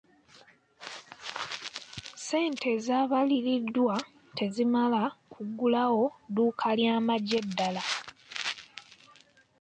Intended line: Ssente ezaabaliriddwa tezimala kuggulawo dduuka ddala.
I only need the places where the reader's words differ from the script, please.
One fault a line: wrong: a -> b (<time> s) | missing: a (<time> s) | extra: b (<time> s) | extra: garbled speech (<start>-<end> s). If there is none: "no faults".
extra: ly'amagye (6.8 s)